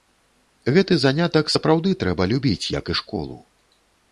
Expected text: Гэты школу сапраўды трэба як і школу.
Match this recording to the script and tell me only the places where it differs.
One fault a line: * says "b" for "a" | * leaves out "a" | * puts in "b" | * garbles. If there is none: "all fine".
* says "занятак" for "школу"
* puts in "любіць"